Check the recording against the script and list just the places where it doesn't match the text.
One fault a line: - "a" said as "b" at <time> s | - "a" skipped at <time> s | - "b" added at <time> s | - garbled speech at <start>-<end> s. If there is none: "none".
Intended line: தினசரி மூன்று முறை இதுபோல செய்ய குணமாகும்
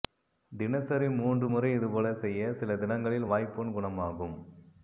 - "சில தினங்களில் வாய்ப்புண்" added at 2.5 s